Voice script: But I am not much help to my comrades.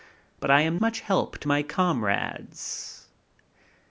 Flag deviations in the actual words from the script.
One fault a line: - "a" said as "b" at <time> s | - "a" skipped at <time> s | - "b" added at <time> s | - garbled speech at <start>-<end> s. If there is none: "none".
- "not" skipped at 0.8 s